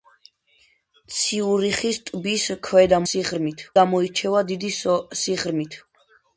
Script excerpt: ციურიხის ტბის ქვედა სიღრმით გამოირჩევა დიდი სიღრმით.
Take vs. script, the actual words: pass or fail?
pass